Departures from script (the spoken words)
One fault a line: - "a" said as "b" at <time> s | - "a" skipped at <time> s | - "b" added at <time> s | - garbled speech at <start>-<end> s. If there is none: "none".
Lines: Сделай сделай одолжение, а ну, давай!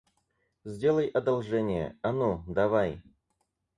- "сделай" skipped at 1.1 s